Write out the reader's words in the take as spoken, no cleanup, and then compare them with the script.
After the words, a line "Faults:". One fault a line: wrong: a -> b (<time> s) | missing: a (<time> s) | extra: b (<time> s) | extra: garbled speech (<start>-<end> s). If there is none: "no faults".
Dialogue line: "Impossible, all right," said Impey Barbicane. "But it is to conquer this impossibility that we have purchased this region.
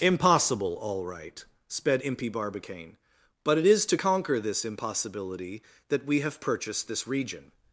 "Impossible, all right," sped Impey Barbicane. "But it is to conquer this impossibility that we have purchased this region.
Faults:
wrong: said -> sped (1.7 s)